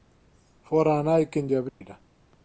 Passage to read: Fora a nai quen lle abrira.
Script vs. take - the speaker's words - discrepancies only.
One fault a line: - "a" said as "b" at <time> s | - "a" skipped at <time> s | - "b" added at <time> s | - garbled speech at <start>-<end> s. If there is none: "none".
none